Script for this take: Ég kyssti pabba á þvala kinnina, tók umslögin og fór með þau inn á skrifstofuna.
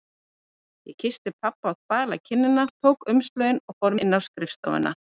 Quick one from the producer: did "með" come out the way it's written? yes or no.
no